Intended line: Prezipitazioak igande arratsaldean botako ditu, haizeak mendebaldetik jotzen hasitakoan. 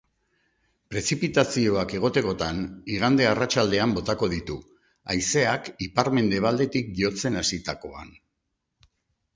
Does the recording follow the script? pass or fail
fail